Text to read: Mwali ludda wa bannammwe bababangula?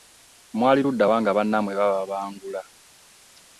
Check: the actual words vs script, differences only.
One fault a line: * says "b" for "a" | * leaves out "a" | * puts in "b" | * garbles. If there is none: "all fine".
* puts in "nga"